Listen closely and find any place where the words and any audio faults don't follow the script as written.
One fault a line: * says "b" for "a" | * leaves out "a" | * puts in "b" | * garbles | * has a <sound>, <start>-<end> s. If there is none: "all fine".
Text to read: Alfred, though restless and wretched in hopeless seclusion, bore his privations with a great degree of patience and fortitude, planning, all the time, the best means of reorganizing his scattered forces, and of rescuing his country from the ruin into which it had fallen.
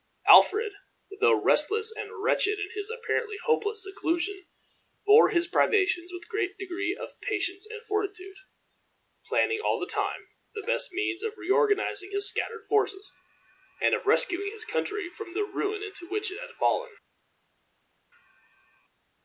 * puts in "his apparently"